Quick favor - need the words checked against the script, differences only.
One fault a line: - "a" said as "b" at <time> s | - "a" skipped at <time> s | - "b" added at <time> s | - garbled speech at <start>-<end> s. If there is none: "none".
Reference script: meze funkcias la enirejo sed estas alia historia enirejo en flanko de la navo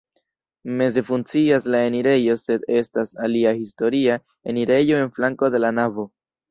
none